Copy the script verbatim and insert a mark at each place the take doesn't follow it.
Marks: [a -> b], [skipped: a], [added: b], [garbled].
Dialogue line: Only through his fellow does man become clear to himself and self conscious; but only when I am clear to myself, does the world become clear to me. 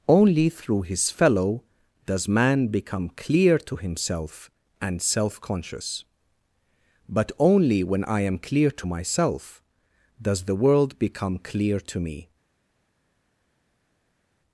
Only through his fellow does man become clear to himself and self conscious; but only when I am clear to myself, does the world become clear to me.